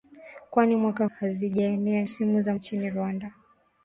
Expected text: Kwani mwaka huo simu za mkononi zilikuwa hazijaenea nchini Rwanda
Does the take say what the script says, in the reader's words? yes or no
no